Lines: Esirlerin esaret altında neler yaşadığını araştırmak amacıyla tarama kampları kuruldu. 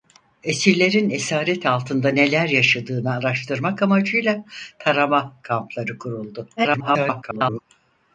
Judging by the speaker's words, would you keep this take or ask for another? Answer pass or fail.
fail